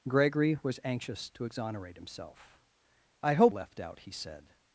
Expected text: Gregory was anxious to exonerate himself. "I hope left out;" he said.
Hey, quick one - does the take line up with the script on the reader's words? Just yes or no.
yes